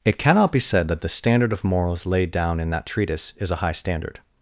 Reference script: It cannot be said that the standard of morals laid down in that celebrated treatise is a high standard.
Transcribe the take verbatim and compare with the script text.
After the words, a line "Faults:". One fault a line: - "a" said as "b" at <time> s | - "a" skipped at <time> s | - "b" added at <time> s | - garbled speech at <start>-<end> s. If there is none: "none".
It cannot be said that the standard of morals laid down in that treatise is a high standard.
Faults:
- "celebrated" skipped at 2.9 s